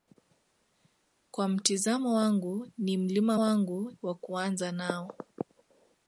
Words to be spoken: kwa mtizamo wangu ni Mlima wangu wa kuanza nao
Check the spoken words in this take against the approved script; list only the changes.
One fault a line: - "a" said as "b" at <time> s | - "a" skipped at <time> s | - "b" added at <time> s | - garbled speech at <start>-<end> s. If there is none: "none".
none